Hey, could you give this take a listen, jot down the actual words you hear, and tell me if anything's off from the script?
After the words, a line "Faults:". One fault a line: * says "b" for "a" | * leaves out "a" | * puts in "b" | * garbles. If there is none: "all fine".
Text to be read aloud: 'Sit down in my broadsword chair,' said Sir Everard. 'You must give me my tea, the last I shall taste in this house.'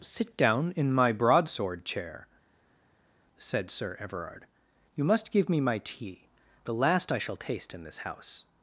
'Sit down in my broadsword chair,' said Sir Everard. 'You must give me my tea, the last I shall taste in this house.'
Faults:
all fine